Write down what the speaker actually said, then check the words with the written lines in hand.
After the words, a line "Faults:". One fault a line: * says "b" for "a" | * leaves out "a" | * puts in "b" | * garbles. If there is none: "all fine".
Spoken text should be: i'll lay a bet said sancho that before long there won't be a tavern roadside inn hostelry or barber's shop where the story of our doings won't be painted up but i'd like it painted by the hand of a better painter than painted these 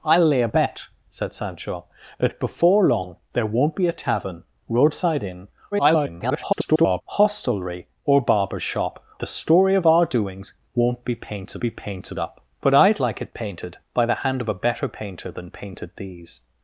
i'll lay a bet said sancho that before long there won't be a tavern roadside inn [garbled] hostelry or barber's shop the story of our doings won't be painted be painted up but i'd like it painted by the hand of a better painter than painted these
Faults:
* garbles
* leaves out "where"
* puts in "be painted"